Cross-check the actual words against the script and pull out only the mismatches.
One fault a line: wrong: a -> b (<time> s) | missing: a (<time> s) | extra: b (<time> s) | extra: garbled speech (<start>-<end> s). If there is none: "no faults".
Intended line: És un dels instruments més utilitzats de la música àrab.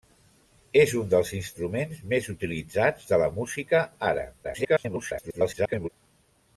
extra: garbled speech (4.4-5.9 s)